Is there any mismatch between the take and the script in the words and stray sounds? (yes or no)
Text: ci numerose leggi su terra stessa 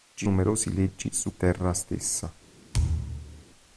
yes